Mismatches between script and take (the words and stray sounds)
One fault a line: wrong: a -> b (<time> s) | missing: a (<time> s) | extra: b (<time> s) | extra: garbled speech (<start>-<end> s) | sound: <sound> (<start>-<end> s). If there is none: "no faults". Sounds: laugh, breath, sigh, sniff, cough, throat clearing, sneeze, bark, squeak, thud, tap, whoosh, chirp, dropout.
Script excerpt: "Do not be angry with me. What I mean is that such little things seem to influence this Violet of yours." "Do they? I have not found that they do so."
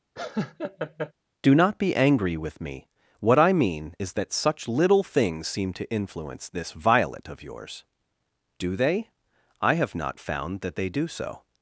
sound: laugh (0.2-1.1 s)